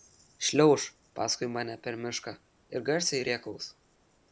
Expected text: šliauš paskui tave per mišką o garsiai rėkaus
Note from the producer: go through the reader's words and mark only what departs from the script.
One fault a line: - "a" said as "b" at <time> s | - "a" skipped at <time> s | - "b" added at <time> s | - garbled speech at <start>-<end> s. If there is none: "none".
- "tave" said as "mane" at 1.6 s
- "o" said as "ir" at 2.8 s